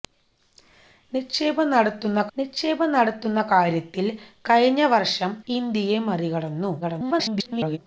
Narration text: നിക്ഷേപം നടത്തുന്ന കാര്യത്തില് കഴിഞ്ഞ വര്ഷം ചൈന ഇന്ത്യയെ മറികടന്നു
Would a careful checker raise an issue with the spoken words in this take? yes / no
yes